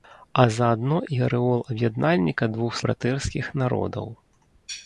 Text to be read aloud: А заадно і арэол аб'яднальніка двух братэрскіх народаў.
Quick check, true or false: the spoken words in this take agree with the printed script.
true